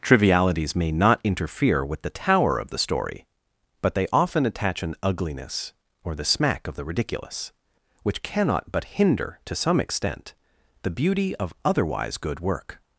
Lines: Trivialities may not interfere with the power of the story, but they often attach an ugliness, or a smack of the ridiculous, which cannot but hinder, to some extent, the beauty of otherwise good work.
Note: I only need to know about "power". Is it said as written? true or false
false